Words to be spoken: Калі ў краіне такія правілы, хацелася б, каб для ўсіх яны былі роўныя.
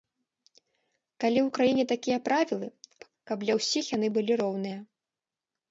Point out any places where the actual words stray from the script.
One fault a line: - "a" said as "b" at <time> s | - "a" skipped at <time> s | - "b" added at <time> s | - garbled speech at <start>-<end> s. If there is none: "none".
- "хацелася" skipped at 2.7 s